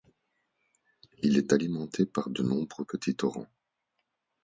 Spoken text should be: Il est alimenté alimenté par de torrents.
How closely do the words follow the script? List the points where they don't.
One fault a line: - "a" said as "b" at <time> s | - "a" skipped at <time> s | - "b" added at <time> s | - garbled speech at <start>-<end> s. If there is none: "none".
- "alimenté" skipped at 2.0 s
- "nombreux petits" added at 2.4 s